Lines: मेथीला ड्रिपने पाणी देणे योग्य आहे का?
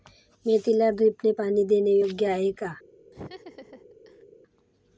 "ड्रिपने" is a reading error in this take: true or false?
false